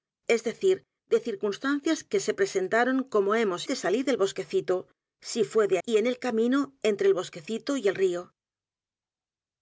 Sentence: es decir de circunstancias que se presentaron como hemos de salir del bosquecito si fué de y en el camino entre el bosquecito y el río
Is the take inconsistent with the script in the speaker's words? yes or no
no